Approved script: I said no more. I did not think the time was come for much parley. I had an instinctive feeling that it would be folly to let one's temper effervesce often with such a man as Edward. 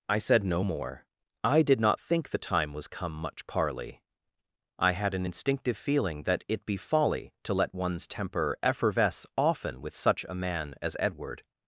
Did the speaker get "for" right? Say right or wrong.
wrong